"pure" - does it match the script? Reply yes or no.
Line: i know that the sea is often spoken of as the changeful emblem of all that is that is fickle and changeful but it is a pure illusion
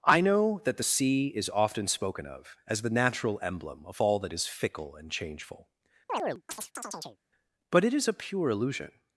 yes